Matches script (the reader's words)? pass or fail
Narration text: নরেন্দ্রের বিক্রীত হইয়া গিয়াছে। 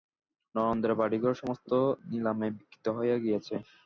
fail